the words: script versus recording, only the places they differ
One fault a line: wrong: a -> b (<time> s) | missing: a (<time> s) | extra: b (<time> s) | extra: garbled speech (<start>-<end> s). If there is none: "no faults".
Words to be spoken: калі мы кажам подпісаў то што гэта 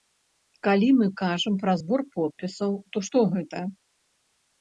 extra: пра збор (1.6 s)